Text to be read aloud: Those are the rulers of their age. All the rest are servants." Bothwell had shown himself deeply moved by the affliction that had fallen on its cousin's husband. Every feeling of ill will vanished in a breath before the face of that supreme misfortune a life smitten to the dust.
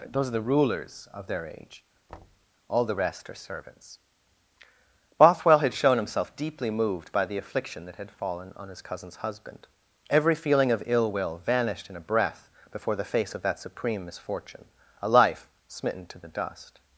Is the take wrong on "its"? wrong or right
wrong